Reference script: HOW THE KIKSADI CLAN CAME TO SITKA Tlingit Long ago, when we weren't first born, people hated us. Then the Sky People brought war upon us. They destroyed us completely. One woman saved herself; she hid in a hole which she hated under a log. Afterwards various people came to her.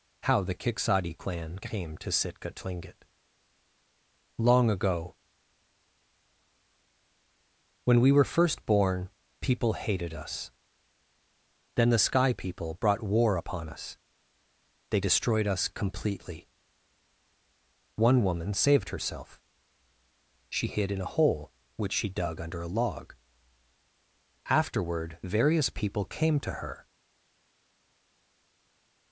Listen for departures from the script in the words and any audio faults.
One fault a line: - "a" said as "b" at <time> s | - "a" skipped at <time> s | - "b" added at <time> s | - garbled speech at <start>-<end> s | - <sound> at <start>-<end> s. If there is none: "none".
- "weren't" said as "were" at 8.1 s
- "hated" said as "dug" at 22.1 s
- "Afterwards" said as "Afterward" at 24.5 s